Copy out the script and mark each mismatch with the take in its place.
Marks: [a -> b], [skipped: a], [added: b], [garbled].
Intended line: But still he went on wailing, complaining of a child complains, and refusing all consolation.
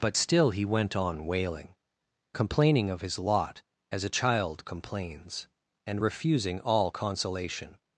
But still he went on wailing, complaining of [added: his lot as] a child complains, and refusing all consolation.